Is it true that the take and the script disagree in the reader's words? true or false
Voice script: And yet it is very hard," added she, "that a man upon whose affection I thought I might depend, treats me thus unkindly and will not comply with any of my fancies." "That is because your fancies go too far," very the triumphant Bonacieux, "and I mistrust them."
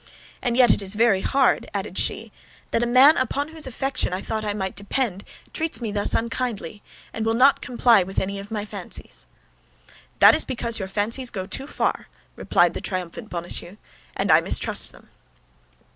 true